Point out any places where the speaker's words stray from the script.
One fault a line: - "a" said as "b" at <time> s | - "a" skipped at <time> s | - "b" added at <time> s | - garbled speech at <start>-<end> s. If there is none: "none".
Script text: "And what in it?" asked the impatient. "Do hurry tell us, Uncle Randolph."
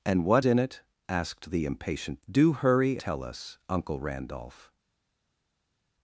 none